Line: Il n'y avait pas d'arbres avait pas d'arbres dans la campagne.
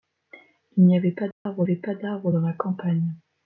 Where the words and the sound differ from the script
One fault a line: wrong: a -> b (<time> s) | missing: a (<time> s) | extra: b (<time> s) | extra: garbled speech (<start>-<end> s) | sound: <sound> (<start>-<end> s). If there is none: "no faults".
sound: dropout (1.3-1.5 s)